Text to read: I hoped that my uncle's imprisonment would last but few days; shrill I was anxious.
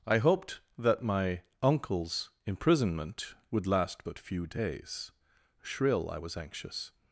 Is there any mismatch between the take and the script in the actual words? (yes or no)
no